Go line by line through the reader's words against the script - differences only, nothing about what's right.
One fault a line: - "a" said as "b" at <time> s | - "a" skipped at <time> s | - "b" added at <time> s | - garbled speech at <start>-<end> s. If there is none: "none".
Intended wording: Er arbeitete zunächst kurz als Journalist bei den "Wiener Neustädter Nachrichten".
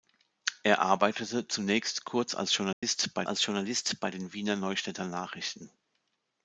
- "als Journalist bei" added at 3.2 s